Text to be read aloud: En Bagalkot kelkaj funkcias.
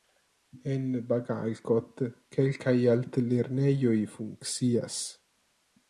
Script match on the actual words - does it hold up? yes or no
no